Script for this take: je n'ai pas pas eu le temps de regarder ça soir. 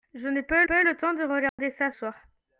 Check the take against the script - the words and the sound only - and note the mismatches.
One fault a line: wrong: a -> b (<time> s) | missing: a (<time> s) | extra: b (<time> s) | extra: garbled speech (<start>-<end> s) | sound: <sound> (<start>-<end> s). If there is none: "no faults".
sound: dropout (1.5-1.6 s)